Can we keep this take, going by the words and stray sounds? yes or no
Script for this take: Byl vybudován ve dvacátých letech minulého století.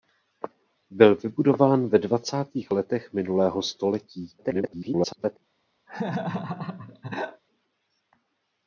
no